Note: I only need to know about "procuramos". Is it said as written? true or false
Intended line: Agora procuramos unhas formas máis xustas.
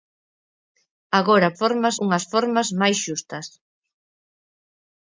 false